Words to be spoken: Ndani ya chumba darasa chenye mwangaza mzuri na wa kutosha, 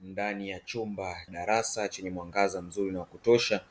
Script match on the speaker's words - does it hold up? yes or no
yes